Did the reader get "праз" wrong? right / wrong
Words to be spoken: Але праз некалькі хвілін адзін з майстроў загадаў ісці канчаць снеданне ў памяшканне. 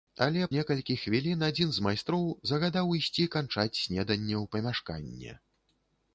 wrong